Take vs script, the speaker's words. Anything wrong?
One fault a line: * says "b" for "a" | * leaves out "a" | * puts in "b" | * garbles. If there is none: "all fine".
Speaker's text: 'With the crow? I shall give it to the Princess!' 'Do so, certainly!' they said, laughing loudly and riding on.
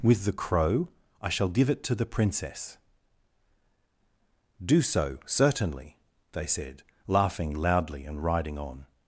all fine